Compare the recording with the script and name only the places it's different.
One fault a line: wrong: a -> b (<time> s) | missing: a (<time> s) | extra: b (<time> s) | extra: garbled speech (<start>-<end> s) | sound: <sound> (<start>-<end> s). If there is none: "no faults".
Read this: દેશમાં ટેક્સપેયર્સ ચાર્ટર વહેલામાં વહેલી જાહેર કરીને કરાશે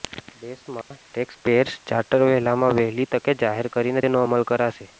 sound: dropout (0.8-0.9 s)
extra: તકે (3.1 s)
extra: તેનો અમલ (4.0 s)